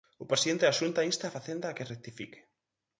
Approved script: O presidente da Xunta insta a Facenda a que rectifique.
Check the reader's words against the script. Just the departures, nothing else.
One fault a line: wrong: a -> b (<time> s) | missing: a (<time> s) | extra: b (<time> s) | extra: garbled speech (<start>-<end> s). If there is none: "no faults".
no faults